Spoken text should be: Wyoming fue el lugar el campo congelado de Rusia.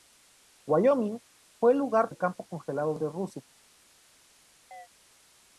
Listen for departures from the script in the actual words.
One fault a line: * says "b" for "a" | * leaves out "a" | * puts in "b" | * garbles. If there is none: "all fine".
all fine